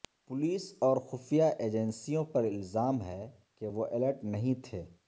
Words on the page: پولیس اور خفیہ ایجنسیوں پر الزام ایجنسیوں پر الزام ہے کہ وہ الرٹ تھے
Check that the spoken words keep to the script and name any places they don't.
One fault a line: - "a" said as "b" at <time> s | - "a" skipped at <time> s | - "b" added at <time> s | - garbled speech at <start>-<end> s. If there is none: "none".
- "ایجنسیوں پر الزام" skipped at 3.0 s
- "نہیں" added at 4.2 s